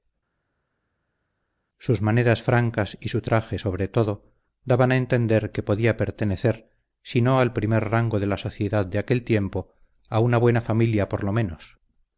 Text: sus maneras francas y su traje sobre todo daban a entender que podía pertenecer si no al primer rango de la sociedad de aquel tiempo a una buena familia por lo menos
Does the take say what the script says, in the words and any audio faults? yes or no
yes